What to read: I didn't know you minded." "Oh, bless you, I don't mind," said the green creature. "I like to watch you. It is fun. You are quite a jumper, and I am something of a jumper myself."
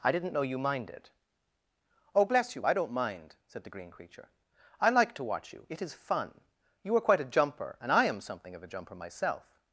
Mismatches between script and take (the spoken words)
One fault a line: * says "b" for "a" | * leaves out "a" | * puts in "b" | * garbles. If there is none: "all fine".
all fine